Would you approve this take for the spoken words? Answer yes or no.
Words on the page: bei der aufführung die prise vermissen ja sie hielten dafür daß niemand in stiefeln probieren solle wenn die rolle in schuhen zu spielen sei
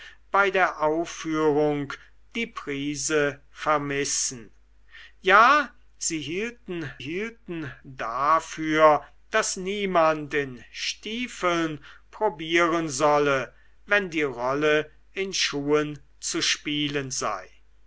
no